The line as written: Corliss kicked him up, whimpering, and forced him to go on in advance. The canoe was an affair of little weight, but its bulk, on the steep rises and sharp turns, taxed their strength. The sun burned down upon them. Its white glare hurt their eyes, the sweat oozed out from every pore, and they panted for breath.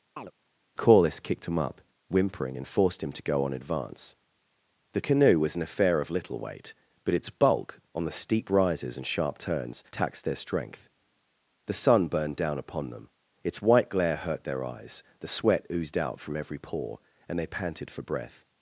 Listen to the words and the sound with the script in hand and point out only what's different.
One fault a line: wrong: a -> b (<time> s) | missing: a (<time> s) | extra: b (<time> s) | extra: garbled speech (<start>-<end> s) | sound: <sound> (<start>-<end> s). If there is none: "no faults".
sound: chirp (0.2-0.3 s)
missing: in (3.5 s)